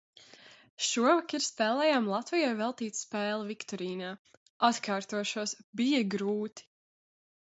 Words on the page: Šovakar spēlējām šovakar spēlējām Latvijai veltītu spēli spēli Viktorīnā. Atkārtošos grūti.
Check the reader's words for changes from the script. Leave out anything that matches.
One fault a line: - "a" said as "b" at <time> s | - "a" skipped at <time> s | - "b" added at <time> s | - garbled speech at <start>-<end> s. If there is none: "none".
- "šovakar spēlējām" skipped at 2.1 s
- "spēli" skipped at 3.5 s
- "bija" added at 5.8 s